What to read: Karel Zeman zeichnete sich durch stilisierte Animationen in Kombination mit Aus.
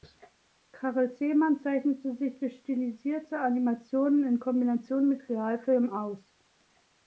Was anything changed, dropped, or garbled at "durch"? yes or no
no